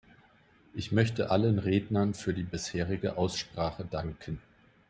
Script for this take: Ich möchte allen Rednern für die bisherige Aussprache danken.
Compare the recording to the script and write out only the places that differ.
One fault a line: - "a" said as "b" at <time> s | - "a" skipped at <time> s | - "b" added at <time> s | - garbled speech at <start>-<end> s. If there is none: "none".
none